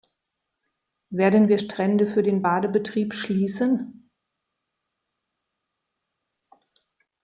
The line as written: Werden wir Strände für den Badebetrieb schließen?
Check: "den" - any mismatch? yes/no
no